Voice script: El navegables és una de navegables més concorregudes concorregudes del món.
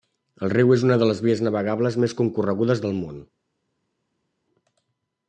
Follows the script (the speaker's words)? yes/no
no